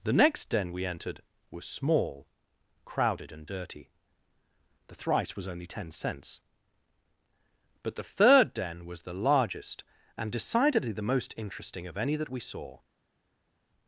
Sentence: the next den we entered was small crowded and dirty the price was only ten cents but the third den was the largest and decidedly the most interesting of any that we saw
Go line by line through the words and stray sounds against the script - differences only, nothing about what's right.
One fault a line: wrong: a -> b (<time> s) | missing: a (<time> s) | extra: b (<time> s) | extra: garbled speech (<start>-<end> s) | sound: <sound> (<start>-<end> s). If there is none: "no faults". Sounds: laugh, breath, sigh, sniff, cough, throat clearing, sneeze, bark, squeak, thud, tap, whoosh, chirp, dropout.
wrong: price -> thrice (4.9 s)